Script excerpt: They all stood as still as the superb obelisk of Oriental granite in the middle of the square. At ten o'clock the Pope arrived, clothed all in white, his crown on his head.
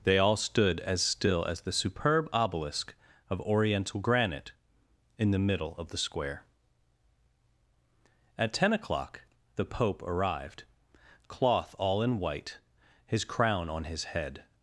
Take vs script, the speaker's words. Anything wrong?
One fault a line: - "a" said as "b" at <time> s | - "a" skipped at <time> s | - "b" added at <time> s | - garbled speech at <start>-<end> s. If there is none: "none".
- "clothed" said as "cloth" at 11.3 s